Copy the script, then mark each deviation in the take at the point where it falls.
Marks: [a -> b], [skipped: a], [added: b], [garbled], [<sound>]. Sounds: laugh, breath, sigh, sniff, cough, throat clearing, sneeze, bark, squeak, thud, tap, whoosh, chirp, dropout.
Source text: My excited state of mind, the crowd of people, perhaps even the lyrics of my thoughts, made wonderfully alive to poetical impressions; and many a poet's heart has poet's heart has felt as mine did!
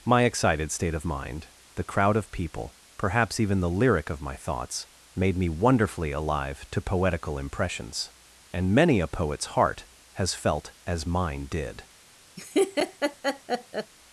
My excited state of mind, the crowd of people, perhaps even the [lyrics -> lyric] of my thoughts, made [added: me] wonderfully alive to poetical impressions; and many a poet's heart has [skipped: poet's heart has] felt as mine did! [laugh]